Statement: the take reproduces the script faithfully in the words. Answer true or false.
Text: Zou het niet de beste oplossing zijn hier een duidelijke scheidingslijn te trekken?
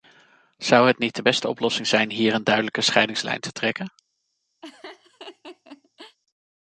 true